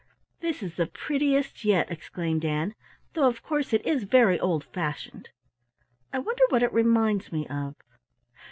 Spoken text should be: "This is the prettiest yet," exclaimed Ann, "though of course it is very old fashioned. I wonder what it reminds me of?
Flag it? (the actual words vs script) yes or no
no